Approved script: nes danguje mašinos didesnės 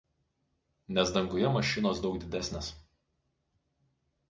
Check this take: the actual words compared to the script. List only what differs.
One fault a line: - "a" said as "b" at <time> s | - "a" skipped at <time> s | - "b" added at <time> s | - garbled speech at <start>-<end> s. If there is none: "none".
- "daug" added at 2.1 s